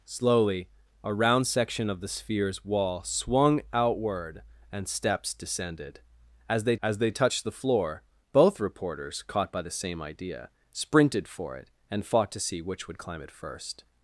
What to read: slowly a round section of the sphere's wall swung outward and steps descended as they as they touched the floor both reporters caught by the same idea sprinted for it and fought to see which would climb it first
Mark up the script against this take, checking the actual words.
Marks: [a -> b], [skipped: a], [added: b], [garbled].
slowly a round section of the sphere's wall swung outward and steps descended as they as they touched the floor both reporters caught by the same idea sprinted for it and fought to see which would climb it first